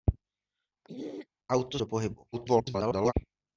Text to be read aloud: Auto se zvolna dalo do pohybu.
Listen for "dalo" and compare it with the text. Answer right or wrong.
wrong